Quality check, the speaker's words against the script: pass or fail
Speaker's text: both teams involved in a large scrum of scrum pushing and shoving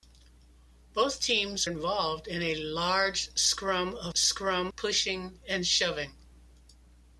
pass